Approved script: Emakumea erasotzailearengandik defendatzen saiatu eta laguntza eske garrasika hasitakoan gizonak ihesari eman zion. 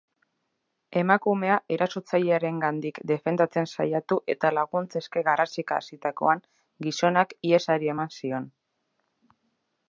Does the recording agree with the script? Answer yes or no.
yes